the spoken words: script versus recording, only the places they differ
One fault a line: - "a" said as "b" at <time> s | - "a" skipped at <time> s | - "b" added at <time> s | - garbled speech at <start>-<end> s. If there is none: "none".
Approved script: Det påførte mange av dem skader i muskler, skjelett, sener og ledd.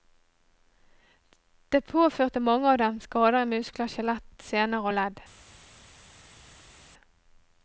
none